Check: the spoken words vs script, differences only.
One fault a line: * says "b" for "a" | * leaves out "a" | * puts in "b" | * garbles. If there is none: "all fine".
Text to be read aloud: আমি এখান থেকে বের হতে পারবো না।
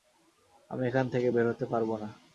all fine